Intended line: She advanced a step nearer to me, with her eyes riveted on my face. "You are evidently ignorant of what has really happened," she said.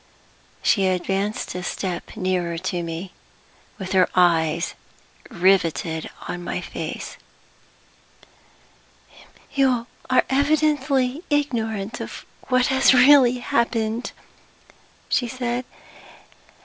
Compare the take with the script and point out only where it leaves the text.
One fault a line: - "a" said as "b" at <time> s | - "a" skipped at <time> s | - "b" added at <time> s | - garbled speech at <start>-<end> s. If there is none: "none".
none